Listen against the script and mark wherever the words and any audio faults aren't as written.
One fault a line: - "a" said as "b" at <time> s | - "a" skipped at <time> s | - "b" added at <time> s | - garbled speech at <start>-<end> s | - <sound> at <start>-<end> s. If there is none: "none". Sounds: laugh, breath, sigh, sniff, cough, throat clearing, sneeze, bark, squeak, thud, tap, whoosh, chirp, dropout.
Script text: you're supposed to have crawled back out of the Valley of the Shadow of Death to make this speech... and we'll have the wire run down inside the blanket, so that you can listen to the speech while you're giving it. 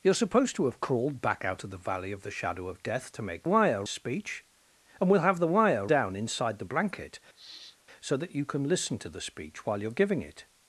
- "this" said as "wire" at 3.4 s
- "run" skipped at 5.9 s
- sniff at 7.3-7.8 s